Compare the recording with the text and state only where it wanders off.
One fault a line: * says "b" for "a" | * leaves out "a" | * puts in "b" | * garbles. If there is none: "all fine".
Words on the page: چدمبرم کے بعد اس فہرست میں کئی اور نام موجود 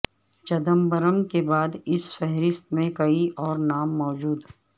all fine